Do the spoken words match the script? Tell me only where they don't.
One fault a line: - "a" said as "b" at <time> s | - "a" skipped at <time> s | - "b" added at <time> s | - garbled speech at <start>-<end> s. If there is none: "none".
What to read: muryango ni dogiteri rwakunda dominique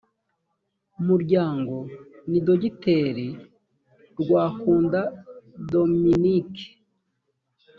none